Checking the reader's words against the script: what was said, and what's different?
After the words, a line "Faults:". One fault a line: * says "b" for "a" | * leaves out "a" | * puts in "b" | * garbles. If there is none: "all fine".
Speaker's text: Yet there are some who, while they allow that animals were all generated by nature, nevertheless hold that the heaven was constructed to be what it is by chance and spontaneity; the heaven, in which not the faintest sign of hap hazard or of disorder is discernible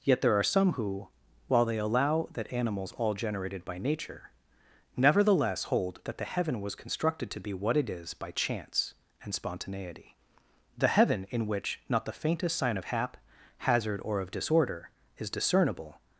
Yet there are some who, while they allow that animals all generated by nature, nevertheless hold that the heaven was constructed to be what it is by chance and spontaneity; the heaven, in which not the faintest sign of hap hazard or of disorder is discernible
Faults:
* leaves out "were"